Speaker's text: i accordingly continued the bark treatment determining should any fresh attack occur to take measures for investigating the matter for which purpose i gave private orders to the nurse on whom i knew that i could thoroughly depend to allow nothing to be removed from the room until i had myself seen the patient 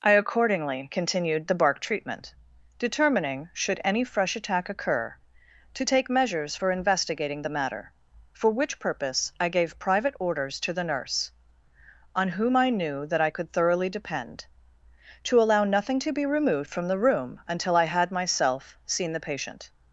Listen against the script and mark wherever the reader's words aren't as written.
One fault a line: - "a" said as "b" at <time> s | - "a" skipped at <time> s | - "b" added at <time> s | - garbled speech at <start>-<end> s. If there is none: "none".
none